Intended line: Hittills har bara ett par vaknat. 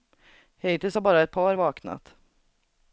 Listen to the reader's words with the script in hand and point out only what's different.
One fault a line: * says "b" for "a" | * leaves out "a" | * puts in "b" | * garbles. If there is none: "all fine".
all fine